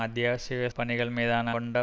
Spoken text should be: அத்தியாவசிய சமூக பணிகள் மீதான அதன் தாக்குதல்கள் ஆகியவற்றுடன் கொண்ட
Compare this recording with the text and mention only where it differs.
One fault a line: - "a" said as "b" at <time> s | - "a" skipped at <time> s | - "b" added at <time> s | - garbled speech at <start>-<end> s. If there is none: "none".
- "சமூக" skipped at 0.7 s
- "அதன் தாக்குதல்கள் ஆகியவற்றுடன்" skipped at 1.5 s